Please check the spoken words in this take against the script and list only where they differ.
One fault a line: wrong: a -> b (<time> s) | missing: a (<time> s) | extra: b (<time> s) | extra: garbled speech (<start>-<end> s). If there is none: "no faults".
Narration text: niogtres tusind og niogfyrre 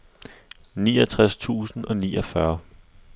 no faults